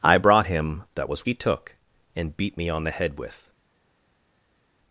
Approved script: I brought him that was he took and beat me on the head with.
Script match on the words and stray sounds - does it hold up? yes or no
yes